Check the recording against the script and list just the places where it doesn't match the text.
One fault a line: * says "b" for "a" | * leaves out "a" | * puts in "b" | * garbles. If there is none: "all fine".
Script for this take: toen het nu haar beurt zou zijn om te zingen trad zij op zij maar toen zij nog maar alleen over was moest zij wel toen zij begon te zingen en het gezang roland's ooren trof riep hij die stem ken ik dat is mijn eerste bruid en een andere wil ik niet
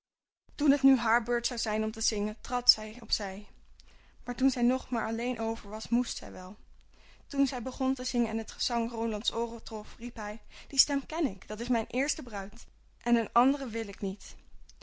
all fine